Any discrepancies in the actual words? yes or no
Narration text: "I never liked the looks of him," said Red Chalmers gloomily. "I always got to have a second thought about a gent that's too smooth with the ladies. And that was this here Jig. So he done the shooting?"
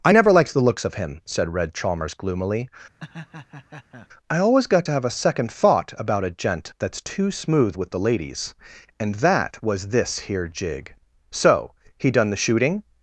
no